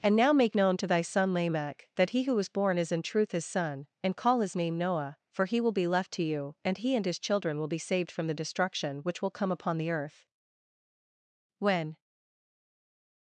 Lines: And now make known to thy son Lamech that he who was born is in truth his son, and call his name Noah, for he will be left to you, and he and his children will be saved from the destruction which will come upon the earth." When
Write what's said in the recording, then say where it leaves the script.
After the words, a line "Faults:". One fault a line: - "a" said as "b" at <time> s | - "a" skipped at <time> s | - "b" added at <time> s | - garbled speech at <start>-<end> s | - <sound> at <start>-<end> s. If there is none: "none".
And now make known to thy son Lamech that he who was born is in truth his son, and call his name Noah, for he will be left to you, and he and his children will be saved from the destruction which will come upon the earth." When
Faults:
none